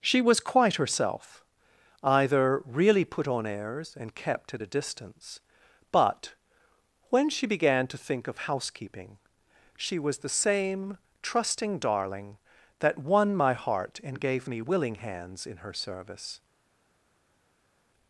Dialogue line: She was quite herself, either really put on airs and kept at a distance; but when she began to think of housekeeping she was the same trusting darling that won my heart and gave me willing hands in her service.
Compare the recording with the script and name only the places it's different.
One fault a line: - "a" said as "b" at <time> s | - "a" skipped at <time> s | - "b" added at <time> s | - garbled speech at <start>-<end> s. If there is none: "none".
none